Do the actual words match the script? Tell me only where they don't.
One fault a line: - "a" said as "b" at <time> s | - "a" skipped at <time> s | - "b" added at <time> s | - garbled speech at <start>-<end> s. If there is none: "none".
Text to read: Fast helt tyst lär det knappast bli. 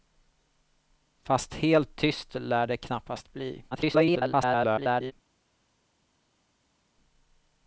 - garbled speech at 3.7-5.1 s